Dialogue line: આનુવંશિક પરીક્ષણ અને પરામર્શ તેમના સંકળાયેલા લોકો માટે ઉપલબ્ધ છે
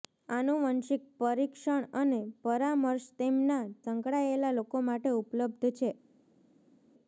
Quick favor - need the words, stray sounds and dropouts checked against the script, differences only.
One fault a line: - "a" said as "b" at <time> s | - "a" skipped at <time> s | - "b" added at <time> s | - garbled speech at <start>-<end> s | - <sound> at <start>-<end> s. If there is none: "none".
none